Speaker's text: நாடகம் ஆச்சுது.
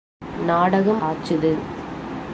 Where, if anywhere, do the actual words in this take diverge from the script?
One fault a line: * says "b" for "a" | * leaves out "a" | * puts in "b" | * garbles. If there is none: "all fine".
all fine